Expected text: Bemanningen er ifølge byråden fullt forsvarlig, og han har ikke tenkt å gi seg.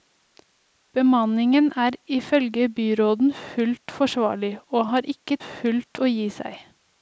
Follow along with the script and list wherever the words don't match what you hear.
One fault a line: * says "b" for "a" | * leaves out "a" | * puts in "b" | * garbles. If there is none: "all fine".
* leaves out "han"
* says "fullt" for "tenkt"